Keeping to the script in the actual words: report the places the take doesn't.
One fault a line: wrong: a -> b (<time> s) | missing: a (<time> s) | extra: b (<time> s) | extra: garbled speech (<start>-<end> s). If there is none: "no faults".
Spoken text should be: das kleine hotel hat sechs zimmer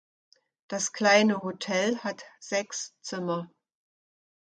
no faults